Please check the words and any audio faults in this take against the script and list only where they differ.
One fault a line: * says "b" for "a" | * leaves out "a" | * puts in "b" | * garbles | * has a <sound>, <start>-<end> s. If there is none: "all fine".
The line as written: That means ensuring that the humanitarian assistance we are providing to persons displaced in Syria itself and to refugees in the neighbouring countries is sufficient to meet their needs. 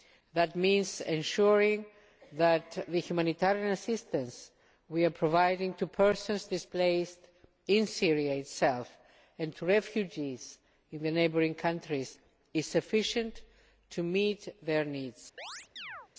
* has a chirp, 15.4-16.1 s